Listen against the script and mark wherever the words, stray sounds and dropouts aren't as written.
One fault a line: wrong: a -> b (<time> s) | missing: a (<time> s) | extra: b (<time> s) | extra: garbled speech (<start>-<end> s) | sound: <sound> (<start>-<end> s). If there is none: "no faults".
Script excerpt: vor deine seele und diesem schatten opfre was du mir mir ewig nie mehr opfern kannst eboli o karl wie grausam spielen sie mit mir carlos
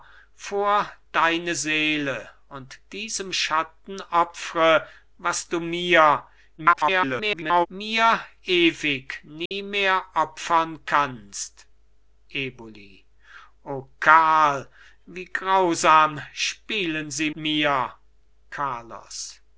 extra: garbled speech (6.6-7.7 s)
sound: dropout (9.5-9.5 s)
missing: mit (17.3 s)